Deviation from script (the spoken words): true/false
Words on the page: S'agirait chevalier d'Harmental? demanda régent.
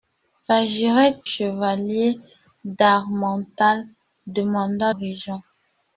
false